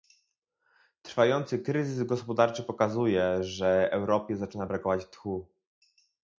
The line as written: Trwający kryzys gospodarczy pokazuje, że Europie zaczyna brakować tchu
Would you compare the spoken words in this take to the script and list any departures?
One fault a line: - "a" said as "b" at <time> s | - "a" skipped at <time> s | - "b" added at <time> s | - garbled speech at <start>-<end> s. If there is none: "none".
none